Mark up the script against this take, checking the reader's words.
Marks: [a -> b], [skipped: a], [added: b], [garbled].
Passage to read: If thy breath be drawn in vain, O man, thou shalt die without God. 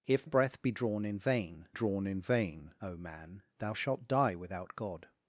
If [skipped: thy] breath be drawn in vain, [added: drawn in vain] O man, thou shalt die without God.